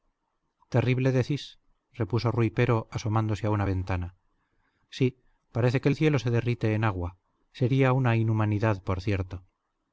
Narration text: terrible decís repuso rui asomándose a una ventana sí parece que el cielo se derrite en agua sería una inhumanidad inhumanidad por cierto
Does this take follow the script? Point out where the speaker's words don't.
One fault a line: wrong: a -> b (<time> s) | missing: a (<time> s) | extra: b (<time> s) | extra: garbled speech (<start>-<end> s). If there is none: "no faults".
extra: pero (2.6 s)
missing: inhumanidad (8.8 s)